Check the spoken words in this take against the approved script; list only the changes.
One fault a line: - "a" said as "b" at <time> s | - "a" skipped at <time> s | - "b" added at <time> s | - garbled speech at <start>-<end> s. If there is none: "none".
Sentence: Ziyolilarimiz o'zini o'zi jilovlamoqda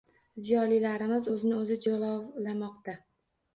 none